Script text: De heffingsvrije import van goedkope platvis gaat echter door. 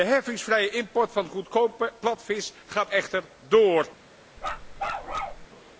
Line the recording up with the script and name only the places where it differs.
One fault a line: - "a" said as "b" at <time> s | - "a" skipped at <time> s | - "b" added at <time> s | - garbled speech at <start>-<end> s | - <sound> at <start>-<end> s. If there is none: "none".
- bark at 4.4-5.5 s